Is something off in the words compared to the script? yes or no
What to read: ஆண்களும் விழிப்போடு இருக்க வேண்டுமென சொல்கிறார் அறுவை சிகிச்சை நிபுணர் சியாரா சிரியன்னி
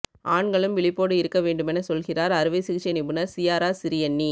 no